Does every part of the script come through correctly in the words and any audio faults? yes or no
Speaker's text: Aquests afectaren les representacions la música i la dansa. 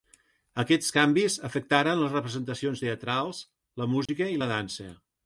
no